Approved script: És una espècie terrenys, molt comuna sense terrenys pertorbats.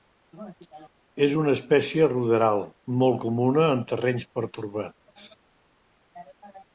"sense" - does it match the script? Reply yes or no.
no